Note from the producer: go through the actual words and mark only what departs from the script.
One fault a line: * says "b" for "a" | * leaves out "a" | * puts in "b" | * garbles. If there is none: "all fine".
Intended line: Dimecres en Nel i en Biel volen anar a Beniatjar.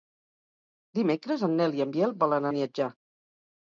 * leaves out "anar a"